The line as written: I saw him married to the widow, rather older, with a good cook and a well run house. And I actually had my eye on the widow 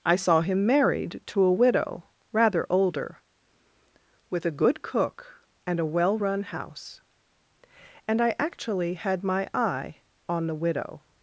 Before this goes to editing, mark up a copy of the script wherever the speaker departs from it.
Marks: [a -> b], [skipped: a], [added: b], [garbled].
I saw him married to [the -> a] widow, rather older, with a good cook and a well run house. And I actually had my eye on the widow